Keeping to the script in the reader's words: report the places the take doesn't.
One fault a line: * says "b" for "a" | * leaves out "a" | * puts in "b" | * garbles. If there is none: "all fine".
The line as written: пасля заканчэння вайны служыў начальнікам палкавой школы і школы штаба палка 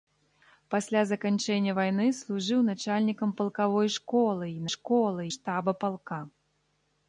all fine